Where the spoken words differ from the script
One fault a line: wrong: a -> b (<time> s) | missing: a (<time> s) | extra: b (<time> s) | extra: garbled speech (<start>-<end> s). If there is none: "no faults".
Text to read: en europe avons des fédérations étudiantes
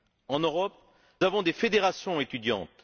no faults